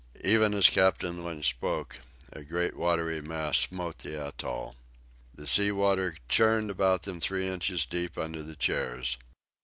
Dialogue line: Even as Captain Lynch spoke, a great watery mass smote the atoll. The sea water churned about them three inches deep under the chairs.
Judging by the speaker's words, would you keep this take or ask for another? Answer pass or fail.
pass